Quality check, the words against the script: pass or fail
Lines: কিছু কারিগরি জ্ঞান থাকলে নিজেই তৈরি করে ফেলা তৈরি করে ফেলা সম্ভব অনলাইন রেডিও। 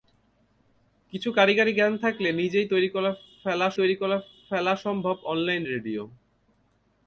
pass